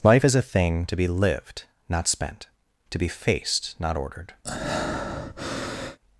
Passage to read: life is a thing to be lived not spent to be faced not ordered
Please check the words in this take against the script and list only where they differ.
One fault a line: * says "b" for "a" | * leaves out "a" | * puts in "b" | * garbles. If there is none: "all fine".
all fine